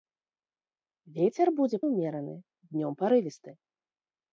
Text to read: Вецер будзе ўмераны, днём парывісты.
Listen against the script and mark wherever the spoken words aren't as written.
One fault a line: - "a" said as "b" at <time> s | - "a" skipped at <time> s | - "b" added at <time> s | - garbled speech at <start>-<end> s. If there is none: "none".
none